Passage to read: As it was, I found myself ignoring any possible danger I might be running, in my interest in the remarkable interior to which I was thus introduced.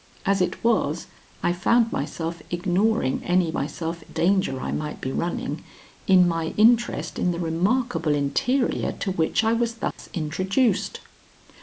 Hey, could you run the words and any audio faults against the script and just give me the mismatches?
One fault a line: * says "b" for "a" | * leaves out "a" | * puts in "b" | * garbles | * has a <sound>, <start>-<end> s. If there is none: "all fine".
* says "myself" for "possible"
* has a dropout, 9.9-10.0 s